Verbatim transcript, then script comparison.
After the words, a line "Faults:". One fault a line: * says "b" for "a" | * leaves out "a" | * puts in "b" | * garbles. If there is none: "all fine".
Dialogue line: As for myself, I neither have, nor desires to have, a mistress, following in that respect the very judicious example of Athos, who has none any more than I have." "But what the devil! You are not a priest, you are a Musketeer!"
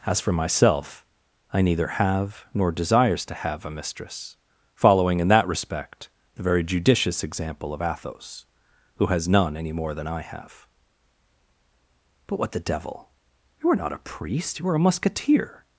As for myself, I neither have, nor desires to have, a mistress, following in that respect the very judicious example of Athos, who has none any more than I have." "But what the devil! You are not a priest, you are a Musketeer!"
Faults:
all fine